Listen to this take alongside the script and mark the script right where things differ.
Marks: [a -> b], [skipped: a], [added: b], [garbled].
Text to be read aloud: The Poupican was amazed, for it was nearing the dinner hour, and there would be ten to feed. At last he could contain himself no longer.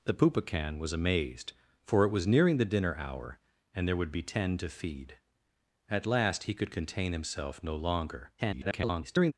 The Poupican was amazed, for it was nearing the dinner hour, and there would be ten to feed. At last he could contain himself no longer. [garbled]